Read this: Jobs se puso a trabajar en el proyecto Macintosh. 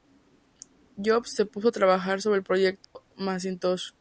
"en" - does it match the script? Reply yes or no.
no